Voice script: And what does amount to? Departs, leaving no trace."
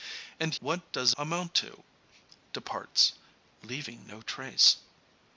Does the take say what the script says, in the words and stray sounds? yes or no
yes